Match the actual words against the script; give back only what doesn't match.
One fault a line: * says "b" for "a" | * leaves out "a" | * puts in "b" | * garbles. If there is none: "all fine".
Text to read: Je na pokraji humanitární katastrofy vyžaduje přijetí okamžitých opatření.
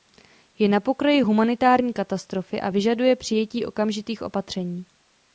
* puts in "a"